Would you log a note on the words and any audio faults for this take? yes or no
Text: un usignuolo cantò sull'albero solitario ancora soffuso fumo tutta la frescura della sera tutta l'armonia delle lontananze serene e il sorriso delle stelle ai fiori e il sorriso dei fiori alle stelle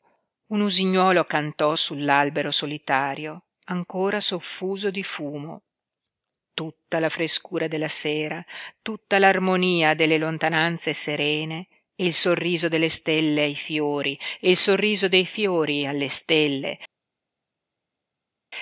yes